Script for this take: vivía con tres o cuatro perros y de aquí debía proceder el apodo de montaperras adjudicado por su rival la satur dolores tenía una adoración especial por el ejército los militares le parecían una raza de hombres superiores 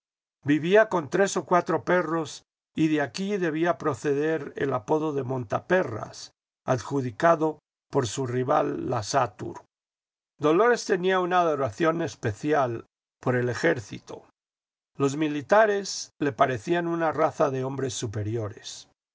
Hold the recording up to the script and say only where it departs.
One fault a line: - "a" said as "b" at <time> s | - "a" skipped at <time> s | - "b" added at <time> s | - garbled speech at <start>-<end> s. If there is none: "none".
none